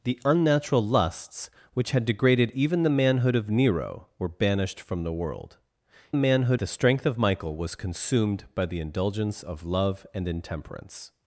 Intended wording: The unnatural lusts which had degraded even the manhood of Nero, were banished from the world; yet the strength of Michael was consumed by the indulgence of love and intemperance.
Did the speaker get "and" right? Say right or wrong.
right